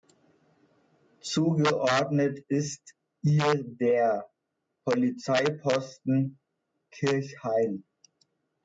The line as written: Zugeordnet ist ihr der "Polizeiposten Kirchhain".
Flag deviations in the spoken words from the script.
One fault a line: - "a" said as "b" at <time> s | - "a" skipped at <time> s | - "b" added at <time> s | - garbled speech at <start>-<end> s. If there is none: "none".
none